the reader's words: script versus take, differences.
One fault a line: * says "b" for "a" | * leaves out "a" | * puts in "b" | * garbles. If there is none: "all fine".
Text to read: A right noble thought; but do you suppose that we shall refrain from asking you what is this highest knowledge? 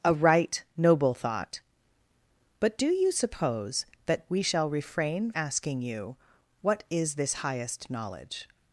* leaves out "from"